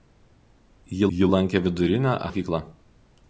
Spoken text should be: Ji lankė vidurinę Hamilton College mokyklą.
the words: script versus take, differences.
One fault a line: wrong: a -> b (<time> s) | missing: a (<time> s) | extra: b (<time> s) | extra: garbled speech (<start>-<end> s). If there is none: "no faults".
extra: ji (1.2 s)
missing: Hamilton College (2.1 s)